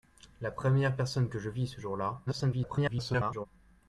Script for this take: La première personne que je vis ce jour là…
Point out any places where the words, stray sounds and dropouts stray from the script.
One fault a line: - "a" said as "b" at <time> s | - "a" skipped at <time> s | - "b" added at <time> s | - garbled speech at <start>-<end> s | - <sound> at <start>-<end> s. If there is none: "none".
- garbled speech at 2.3-3.5 s